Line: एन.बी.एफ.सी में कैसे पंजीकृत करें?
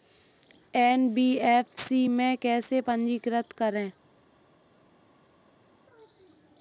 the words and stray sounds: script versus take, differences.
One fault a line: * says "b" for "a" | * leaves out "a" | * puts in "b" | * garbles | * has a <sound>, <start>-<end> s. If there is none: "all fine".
all fine